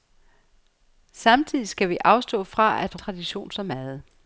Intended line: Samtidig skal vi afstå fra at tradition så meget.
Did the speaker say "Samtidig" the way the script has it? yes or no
yes